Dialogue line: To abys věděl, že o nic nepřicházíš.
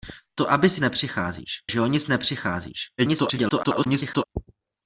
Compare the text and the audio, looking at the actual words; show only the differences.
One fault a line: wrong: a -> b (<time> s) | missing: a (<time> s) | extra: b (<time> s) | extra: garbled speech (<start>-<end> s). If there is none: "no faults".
wrong: věděl -> nepřicházíš (0.8 s)
extra: garbled speech (3.0-4.2 s)